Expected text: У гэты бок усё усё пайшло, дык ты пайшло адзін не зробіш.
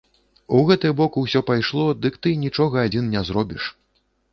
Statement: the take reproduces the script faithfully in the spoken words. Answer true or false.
false